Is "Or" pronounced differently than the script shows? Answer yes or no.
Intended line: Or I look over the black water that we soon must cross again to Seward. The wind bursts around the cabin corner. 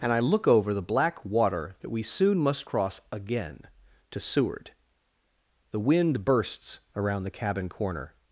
yes